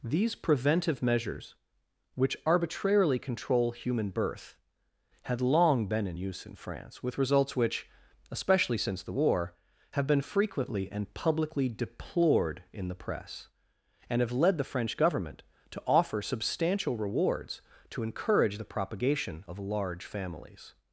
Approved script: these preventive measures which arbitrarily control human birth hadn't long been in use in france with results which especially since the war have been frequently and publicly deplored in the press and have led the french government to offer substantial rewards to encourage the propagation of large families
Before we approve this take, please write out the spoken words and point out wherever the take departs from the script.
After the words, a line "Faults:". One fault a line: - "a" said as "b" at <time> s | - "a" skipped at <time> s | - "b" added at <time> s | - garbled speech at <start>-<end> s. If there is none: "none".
these preventive measures which arbitrarily control human birth had long been in use in france with results which especially since the war have been frequently and publicly deplored in the press and have led the french government to offer substantial rewards to encourage the propagation of large families
Faults:
- "hadn't" said as "had" at 5.2 s